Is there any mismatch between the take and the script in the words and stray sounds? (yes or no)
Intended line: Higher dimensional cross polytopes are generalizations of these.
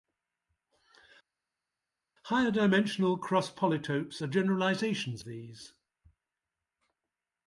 yes